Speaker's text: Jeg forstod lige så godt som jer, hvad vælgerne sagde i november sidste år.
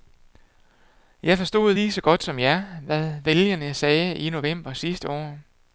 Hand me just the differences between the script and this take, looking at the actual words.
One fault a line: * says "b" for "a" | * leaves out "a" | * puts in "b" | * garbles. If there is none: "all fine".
all fine